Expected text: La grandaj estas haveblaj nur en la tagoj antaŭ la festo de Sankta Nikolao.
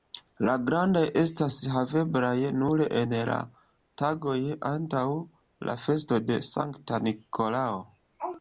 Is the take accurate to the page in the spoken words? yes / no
yes